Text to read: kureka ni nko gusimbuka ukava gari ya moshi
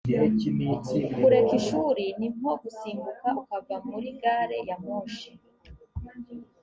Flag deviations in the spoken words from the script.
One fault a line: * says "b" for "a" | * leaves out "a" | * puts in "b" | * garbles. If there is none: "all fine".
* puts in "ishuri"
* puts in "muri"